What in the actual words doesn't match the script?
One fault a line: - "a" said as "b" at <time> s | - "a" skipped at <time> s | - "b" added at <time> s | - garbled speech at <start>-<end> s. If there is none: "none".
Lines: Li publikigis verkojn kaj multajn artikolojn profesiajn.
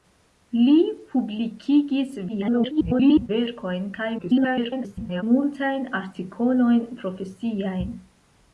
- garbled speech at 2.3-3.3 s
- garbled speech at 4.2-5.2 s